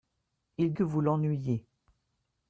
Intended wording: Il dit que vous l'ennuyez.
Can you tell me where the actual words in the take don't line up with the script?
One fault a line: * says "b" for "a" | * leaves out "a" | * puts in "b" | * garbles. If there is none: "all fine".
* leaves out "dit"